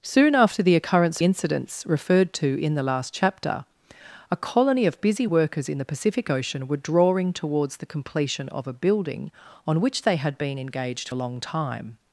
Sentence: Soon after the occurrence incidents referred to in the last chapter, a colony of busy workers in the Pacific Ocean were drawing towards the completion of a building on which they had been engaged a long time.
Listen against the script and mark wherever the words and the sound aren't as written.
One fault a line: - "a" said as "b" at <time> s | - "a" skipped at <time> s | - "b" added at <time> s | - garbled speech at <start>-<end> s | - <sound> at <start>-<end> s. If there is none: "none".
none